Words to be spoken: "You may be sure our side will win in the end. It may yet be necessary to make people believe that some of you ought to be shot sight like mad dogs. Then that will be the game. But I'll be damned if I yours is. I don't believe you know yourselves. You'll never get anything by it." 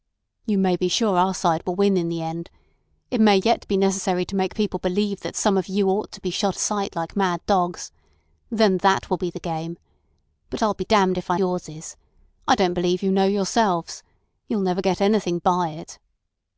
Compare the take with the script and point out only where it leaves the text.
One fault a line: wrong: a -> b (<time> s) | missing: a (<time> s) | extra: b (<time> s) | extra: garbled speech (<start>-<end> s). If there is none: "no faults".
no faults